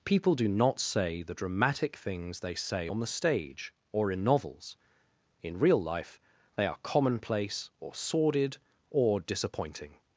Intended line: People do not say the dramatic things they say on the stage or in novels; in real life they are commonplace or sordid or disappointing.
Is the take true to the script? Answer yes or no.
yes